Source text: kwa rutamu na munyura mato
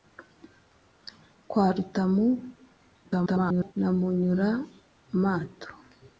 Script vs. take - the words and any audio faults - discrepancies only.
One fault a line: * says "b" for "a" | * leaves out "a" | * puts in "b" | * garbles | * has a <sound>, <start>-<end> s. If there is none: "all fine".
* garbles